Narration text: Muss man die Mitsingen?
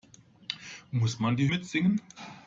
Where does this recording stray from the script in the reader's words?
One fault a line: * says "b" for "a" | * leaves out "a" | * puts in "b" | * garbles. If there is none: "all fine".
all fine